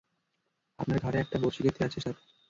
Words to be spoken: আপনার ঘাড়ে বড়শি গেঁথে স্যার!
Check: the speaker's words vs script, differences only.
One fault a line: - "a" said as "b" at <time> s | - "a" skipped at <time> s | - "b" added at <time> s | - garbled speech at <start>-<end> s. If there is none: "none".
- "একটা" added at 1.2 s
- "আছে" added at 1.9 s